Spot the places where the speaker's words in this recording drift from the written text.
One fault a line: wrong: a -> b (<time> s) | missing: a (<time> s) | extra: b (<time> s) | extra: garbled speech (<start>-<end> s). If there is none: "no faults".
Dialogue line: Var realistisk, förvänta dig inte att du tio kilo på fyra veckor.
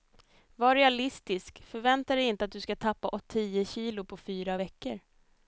extra: ska tappa (2.6 s)